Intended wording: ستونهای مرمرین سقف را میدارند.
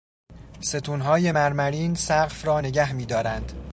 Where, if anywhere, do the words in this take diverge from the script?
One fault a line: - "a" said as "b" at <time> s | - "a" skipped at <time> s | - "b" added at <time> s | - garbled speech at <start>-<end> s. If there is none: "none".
- "نگه" added at 2.6 s